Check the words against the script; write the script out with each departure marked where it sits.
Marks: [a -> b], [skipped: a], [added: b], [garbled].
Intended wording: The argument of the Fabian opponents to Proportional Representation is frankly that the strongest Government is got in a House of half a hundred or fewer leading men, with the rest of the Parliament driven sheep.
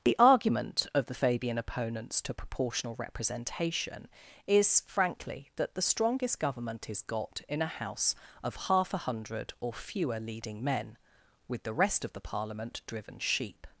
The argument of the Fabian opponents to Proportional Representation is frankly that the strongest Government is got in a House of half a hundred or fewer leading men, with the rest of the Parliament driven sheep.